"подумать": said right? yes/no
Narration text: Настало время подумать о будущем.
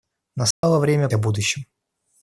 no